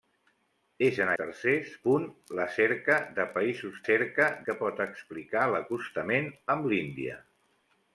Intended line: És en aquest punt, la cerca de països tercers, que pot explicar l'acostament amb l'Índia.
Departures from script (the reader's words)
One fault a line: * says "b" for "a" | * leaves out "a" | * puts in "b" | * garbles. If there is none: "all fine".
* says "tercers" for "aquest"
* says "cerca" for "tercers"